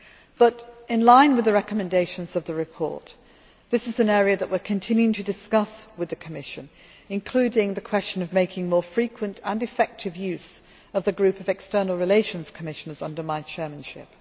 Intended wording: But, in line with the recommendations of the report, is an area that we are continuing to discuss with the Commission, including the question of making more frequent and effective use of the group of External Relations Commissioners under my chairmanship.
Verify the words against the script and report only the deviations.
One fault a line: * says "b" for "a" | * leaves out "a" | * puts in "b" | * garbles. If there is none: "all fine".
* puts in "this"